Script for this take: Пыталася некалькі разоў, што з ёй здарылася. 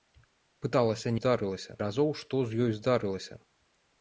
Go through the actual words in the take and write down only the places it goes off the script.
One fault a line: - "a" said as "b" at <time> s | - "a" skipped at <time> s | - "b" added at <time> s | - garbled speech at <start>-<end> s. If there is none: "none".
- "некалькі" said as "здарылася" at 1.2 s